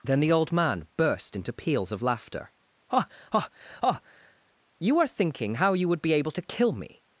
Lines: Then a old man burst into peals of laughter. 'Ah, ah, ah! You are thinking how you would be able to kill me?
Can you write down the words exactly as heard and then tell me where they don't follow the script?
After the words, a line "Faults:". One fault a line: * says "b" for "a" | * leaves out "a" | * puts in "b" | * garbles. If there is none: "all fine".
Then the old man burst into peals of laughter. 'Ah, ah, ah! You are thinking how you would be able to kill me?
Faults:
* says "the" for "a"